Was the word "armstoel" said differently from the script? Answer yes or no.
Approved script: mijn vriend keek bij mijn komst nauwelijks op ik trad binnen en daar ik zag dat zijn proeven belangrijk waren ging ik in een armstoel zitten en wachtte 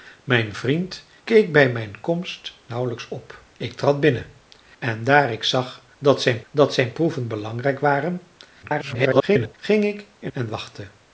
yes